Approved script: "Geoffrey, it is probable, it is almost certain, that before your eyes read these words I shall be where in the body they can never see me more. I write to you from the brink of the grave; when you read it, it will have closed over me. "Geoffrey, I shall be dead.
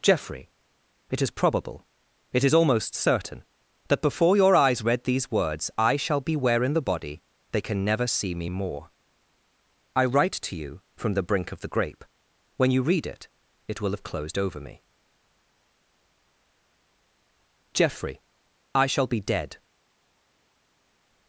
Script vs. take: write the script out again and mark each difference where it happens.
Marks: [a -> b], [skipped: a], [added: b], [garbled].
"Geoffrey, it is probable, it is almost certain, that before your eyes read these words I shall be where in the body they can never see me more. I write to you from the brink of the [grave; -> grape] when you read it, it will have closed over me. "Geoffrey, I shall be dead.